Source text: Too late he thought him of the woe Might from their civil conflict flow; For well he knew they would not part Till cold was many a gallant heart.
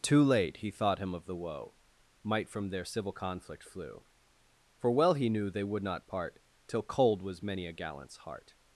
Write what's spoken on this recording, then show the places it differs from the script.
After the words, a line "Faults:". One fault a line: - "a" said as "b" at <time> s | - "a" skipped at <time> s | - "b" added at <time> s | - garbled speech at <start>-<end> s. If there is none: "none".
Too late he thought him of the woe Might from their civil conflict flew; For well he knew they would not part Till cold was many a gallants heart.
Faults:
- "flow" said as "flew" at 3.6 s
- "gallant" said as "gallants" at 7.7 s